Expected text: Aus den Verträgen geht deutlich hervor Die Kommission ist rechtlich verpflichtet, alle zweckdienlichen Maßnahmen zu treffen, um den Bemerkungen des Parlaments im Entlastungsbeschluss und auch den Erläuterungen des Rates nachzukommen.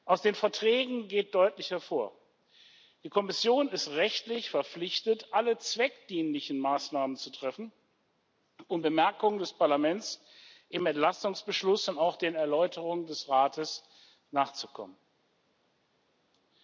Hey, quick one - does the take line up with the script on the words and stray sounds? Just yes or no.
no